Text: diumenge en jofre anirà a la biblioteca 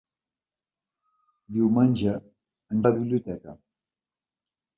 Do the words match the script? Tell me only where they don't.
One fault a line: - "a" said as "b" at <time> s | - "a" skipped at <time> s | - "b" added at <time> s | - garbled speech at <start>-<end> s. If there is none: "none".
- "jofre anirà a" skipped at 2.8 s